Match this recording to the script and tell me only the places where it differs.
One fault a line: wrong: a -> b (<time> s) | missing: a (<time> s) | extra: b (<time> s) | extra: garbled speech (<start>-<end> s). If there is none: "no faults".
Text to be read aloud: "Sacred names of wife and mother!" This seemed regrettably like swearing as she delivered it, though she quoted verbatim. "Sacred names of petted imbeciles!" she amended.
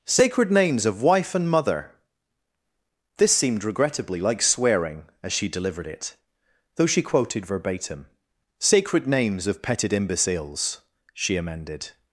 no faults